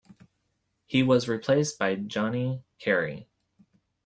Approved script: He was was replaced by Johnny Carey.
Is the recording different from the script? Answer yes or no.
yes